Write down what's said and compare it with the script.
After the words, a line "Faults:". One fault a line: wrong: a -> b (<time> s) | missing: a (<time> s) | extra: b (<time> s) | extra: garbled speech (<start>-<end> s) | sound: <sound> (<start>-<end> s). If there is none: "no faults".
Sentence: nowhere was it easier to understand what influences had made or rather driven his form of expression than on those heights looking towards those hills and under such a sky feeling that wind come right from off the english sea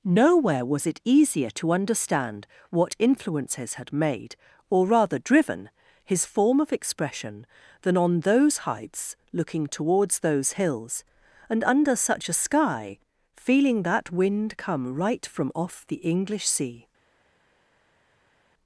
nowhere was it easier to understand what influences had made or rather driven his form of expression than on those heights looking towards those hills and under such a sky feeling that wind come right from off the english sea
Faults:
no faults